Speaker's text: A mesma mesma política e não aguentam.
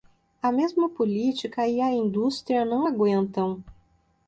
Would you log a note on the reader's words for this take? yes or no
yes